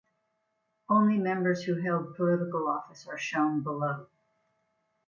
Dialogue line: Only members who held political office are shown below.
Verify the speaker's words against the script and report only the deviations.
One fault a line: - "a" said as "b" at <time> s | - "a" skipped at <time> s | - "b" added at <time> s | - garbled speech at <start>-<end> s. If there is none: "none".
none